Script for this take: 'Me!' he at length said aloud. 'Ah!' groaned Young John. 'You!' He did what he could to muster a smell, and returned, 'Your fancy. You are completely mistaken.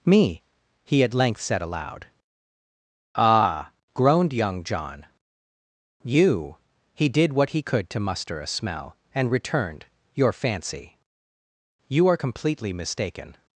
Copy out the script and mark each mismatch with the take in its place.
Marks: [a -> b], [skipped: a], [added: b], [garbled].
'Me!' he at length said aloud. 'Ah!' groaned Young John. 'You!' He did what he could to muster a smell, and returned, 'Your fancy. You are completely mistaken.